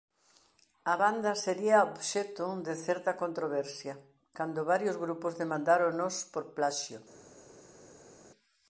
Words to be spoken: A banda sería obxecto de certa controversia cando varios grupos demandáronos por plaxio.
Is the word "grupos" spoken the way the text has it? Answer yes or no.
yes